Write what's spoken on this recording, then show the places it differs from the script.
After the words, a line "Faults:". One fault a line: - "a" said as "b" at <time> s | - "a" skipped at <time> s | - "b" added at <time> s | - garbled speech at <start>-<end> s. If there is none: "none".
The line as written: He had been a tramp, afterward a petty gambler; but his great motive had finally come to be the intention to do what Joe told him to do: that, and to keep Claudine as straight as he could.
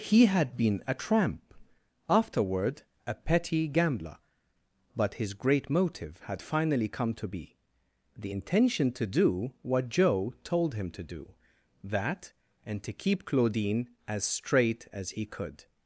He had been a tramp, afterward a petty gambler; but his great motive had finally come to be the intention to do what Joe told him to do: that, and to keep Claudine as straight as he could.
Faults:
none